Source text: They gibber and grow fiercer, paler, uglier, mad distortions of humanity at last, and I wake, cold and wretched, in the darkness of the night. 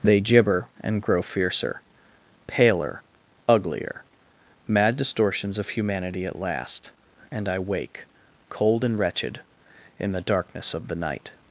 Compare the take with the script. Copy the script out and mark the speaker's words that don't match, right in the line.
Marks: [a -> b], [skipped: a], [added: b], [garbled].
They gibber and grow fiercer, paler, uglier, mad distortions of humanity at last, and I wake, cold and wretched, in the darkness of the night.